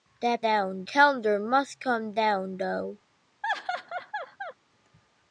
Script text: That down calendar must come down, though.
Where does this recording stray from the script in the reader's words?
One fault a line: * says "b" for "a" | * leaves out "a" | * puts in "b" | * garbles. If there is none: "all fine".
all fine